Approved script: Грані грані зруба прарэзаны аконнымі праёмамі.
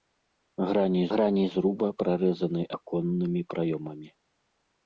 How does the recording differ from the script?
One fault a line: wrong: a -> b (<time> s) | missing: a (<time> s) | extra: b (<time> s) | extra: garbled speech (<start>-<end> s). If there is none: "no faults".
no faults